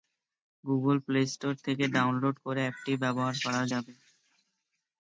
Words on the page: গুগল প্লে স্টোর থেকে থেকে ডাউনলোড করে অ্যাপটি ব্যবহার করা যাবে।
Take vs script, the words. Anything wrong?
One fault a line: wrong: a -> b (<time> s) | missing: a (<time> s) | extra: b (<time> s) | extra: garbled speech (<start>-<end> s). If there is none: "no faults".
missing: থেকে (1.8 s)